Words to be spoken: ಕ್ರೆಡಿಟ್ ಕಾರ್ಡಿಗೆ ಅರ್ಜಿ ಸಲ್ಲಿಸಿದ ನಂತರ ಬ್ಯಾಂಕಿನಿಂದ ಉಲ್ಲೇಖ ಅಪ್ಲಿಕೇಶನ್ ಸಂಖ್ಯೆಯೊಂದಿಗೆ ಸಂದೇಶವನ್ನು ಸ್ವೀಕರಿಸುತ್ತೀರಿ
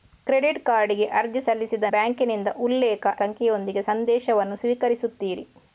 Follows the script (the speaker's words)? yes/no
no